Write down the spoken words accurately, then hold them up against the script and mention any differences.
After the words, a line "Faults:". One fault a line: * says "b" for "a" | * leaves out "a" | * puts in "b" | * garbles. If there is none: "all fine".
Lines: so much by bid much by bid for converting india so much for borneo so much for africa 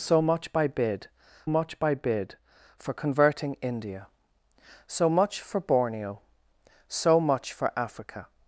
so much by bid much by bid for converting india so much for borneo so much for africa
Faults:
all fine